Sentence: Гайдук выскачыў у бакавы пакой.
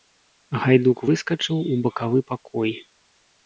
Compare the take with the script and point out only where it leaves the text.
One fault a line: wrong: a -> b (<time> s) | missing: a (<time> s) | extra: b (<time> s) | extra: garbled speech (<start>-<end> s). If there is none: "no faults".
no faults